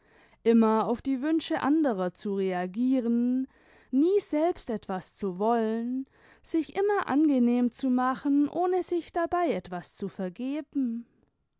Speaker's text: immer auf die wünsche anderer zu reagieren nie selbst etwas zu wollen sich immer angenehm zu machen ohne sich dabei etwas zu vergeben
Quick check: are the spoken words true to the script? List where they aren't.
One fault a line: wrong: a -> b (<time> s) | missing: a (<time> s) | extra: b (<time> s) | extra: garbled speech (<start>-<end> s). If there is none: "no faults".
no faults